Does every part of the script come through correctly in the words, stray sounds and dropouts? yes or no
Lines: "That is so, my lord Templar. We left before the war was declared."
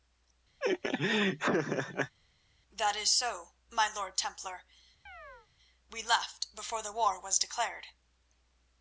no